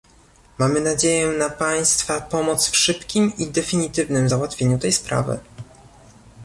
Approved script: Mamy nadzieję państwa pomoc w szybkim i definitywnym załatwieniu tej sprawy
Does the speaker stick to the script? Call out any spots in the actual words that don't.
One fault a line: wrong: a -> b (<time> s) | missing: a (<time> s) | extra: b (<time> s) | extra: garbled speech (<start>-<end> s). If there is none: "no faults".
extra: na (1.3 s)